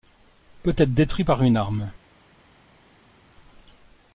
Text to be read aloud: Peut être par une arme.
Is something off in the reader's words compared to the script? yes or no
yes